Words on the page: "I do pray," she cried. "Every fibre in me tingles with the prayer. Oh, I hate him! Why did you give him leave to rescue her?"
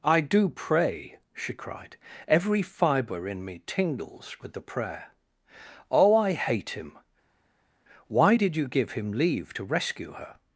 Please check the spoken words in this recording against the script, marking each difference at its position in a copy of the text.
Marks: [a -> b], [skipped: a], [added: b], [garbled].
"I do pray," she cried. "Every fibre in me tingles with the prayer. Oh, I hate him! Why did you give him leave to rescue her?"